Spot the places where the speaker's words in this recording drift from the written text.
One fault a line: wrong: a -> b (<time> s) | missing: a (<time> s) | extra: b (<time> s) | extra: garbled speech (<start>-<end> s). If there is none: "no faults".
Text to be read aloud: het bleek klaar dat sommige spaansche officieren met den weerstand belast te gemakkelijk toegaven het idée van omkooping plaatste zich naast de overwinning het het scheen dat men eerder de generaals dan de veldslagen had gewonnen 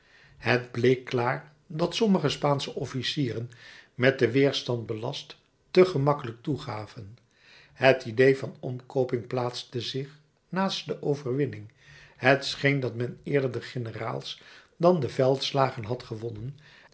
missing: het (12.5 s)